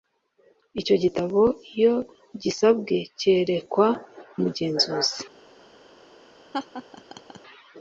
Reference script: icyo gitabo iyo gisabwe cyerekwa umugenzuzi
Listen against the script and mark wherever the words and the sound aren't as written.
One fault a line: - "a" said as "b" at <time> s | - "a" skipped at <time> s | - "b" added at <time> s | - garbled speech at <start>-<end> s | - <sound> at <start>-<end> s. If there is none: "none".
- laugh at 6.5-7.4 s